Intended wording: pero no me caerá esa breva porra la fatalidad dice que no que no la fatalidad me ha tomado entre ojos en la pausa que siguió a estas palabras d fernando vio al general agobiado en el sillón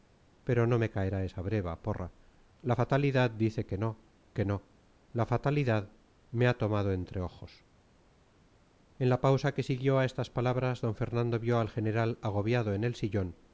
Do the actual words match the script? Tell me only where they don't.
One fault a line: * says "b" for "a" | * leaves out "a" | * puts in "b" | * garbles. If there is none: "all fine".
all fine